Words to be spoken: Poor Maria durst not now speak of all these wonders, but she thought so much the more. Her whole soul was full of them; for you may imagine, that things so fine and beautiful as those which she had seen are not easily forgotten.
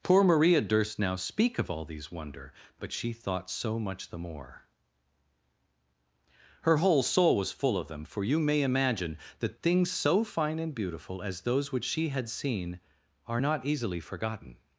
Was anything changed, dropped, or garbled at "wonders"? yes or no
yes